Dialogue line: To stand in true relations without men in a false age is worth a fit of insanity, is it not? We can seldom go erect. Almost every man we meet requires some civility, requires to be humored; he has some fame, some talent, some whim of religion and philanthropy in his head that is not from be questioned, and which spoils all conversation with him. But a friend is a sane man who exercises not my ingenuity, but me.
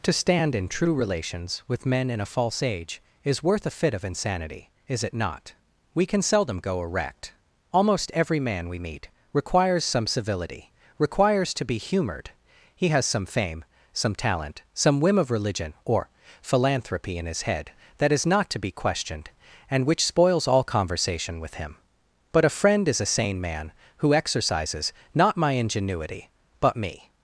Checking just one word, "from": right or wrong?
wrong